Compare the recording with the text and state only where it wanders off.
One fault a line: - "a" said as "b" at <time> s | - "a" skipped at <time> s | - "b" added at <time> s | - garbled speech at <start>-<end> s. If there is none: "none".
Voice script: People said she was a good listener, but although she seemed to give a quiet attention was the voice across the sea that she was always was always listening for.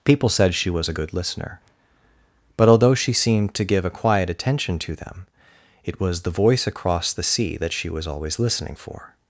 - "to them it" added at 4.8 s
- "was always" skipped at 8.4 s